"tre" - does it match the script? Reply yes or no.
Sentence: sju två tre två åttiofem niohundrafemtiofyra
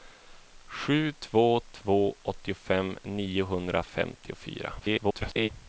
no